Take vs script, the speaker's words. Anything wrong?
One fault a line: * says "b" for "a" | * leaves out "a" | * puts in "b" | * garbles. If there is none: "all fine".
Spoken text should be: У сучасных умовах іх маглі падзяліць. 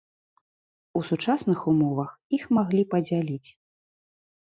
all fine